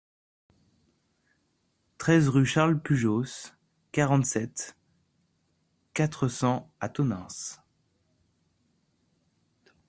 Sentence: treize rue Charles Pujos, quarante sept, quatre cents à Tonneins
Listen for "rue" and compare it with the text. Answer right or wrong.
right